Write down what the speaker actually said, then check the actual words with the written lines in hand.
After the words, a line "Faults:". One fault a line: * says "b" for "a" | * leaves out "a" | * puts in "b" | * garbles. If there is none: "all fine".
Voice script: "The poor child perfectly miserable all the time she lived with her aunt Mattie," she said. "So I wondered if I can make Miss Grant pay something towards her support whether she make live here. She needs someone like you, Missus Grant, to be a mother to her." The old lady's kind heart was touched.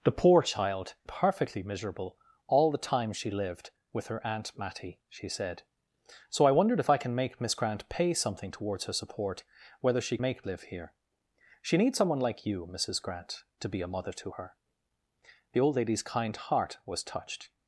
"The poor child perfectly miserable all the time she lived with her aunt Mattie," she said. "So I wondered if I can make Miss Grant pay something towards her support whether she make live here. She needs someone like you, Missus Grant, to be a mother to her." The old lady's kind heart was touched.
Faults:
all fine